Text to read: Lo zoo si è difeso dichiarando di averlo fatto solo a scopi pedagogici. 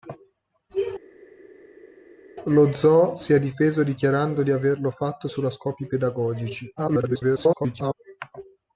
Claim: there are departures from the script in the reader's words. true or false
true